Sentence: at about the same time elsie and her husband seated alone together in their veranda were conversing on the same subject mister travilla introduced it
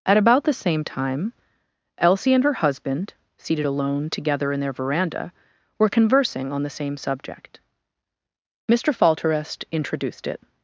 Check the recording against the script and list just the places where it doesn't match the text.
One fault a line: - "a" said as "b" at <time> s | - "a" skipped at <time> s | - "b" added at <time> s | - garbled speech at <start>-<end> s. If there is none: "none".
- "travilla" said as "falterest" at 8.9 s